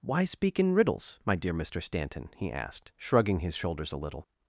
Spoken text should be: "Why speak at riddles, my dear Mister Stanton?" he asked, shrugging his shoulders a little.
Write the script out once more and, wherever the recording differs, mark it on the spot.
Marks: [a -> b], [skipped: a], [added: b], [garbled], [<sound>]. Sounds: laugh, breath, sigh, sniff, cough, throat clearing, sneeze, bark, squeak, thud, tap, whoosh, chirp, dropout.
"Why speak [at -> in] riddles, my dear Mister Stanton?" he asked, shrugging his shoulders a little.